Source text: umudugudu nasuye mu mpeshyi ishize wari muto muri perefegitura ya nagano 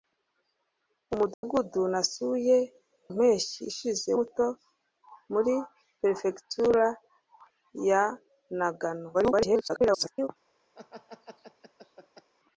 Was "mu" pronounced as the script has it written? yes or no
no